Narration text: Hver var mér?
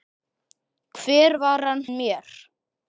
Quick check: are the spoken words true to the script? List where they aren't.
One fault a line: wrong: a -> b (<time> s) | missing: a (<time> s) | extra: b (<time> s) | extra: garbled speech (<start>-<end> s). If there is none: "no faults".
no faults